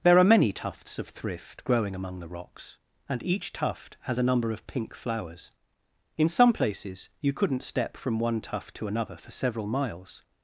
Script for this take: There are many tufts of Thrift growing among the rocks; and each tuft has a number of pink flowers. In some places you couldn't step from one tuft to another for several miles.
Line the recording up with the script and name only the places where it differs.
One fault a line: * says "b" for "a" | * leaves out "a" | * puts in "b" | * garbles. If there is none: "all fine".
all fine